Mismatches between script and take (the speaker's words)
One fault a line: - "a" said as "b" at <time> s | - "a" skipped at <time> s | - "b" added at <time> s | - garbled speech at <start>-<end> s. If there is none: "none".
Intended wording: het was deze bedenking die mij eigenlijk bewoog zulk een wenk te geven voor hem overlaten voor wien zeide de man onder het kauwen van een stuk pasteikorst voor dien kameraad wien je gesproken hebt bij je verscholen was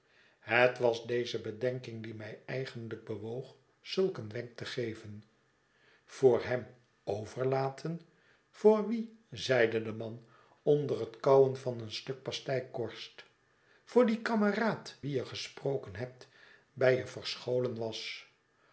none